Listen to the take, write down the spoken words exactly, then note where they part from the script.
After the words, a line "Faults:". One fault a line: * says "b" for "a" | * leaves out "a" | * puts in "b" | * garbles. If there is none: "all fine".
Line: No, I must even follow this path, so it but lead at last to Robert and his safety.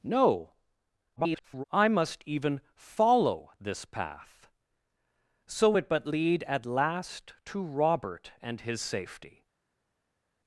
No, [garbled] I must even follow this path, so it but lead at last to Robert and his safety.
Faults:
* garbles